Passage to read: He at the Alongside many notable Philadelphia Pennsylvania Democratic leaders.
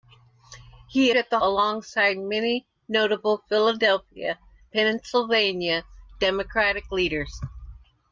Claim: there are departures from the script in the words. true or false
false